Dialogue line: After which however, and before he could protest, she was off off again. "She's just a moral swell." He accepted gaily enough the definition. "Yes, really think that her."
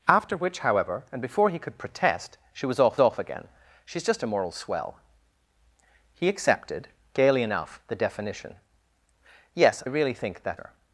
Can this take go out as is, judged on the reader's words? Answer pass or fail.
pass